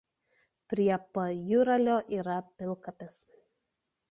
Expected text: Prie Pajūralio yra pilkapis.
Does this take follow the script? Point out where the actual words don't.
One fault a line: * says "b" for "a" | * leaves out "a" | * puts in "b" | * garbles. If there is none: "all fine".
all fine